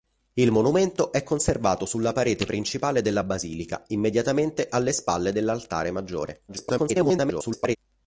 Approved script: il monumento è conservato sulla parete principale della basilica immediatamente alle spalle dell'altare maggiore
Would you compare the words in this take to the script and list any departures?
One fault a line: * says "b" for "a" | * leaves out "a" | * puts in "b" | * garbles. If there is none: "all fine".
* garbles